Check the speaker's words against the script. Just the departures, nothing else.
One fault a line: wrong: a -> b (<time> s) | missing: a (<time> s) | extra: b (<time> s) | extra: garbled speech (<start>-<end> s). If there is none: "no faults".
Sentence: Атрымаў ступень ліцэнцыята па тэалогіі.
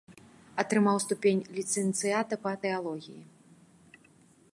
no faults